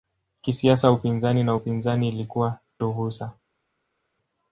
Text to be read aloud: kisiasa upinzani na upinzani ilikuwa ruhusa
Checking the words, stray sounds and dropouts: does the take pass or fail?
pass